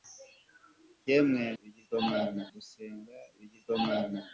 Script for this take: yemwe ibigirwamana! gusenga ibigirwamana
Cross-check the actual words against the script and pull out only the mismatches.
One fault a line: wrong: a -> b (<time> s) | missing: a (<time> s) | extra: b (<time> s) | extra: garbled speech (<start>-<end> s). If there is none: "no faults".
no faults